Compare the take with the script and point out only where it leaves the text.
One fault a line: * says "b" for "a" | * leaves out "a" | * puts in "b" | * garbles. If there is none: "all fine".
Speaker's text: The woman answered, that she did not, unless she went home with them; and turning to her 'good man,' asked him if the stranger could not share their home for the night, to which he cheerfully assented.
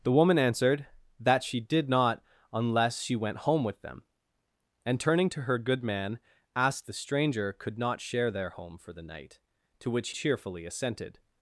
* leaves out "him if"
* leaves out "he"